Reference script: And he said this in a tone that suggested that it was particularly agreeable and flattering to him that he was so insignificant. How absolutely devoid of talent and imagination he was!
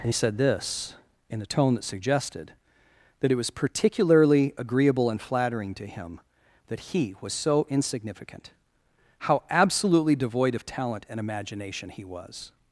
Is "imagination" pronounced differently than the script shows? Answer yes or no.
no